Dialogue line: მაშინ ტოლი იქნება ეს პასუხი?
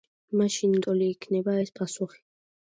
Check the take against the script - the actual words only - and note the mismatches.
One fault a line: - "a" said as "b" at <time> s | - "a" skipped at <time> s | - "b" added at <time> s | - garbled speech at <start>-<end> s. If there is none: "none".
none